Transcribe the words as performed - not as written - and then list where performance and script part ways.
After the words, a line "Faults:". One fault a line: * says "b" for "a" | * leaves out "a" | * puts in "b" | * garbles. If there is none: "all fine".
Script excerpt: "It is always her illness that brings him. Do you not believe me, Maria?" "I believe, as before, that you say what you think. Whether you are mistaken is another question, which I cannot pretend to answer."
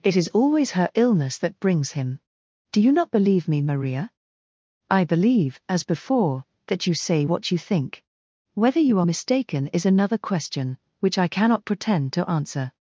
"It is always her illness that brings him. Do you not believe me, Maria?" "I believe, as before, that you say what you think. Whether you are mistaken is another question, which I cannot pretend to answer."
Faults:
all fine